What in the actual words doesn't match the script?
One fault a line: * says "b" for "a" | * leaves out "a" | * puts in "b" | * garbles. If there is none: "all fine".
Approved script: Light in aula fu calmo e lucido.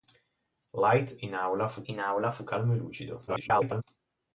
* puts in "in aula fu"
* garbles